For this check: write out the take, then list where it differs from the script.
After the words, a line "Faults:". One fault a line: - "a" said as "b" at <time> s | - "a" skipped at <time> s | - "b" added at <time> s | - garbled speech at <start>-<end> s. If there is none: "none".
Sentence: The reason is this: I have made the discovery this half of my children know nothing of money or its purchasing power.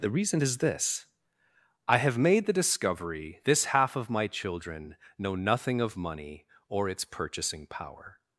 The reason is this: I have made the discovery this half of my children know nothing of money or its purchasing power.
Faults:
none